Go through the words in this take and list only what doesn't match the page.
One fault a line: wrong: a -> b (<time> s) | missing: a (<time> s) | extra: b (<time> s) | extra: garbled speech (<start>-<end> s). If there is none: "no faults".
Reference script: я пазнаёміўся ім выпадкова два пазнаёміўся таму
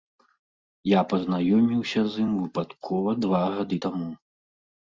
extra: з (2.1 s)
wrong: пазнаёміўся -> гады (3.6 s)